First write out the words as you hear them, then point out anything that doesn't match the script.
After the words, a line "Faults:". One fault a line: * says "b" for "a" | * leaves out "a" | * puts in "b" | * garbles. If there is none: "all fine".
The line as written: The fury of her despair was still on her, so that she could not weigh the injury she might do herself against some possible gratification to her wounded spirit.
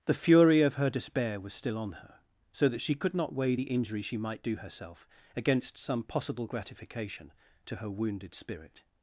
The fury of her despair was still on her, so that she could not weigh the injury she might do herself against some possible gratification to her wounded spirit.
Faults:
all fine